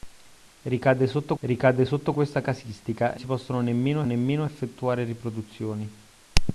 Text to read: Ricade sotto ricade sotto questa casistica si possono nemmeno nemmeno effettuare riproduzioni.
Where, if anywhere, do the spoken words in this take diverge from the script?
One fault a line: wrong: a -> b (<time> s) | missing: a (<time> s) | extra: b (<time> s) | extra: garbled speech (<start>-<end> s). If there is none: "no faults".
no faults